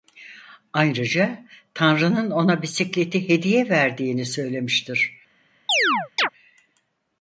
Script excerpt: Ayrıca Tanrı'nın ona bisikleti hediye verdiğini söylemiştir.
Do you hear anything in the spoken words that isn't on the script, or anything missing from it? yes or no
no